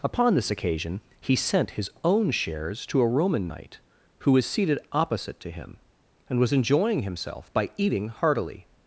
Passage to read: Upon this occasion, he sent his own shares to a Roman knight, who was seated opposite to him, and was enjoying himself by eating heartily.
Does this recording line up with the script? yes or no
yes